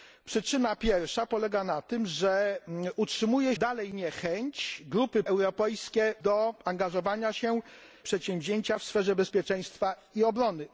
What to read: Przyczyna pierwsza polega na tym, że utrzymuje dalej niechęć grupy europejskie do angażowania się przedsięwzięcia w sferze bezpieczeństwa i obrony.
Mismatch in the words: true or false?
false